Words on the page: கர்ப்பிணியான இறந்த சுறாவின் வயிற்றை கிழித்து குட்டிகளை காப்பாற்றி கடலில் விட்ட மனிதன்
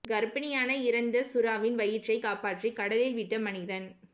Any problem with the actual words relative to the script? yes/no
yes